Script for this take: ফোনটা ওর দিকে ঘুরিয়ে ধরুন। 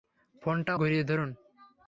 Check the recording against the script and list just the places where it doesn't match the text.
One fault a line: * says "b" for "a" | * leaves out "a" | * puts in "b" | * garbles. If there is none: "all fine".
* leaves out "ওর দিকে"